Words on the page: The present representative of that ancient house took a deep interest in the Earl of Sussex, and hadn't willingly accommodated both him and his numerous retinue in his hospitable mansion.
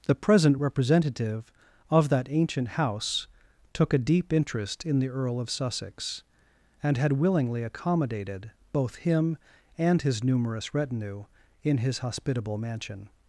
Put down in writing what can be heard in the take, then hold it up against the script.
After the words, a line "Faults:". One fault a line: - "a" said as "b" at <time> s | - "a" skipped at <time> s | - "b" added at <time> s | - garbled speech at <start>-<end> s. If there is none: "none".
The present representative of that ancient house took a deep interest in the Earl of Sussex, and had willingly accommodated both him and his numerous retinue in his hospitable mansion.
Faults:
- "hadn't" said as "had" at 7.0 s